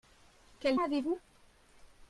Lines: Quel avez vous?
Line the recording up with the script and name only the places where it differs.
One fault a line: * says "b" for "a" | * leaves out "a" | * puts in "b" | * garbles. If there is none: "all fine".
all fine